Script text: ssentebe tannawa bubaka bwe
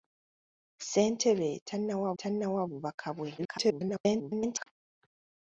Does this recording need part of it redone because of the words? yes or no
yes